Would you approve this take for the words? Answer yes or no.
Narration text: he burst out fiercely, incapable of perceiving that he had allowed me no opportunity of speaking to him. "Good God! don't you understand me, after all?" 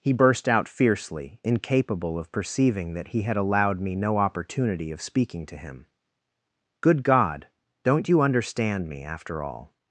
yes